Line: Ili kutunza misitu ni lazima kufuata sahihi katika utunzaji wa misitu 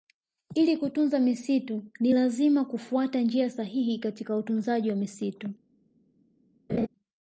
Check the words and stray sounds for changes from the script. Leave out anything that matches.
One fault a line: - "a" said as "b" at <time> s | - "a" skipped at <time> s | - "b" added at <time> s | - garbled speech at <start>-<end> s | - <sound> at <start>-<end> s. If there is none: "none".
- "njia" added at 3.2 s
- laugh at 6.7-6.9 s